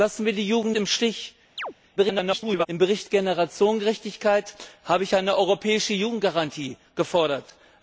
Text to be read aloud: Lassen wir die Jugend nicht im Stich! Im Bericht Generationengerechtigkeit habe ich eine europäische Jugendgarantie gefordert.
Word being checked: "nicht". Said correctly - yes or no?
no